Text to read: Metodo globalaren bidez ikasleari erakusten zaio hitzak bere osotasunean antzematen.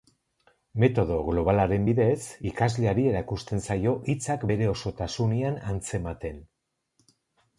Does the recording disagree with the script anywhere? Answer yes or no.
no